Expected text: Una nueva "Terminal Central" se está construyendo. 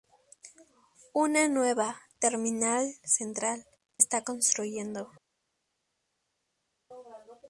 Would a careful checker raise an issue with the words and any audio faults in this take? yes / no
yes